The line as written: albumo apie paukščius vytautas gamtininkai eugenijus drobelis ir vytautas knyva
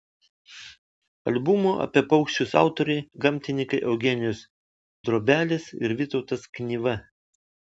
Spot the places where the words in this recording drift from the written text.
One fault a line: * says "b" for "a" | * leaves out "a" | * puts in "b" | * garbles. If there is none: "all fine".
* says "autoriai" for "vytautas"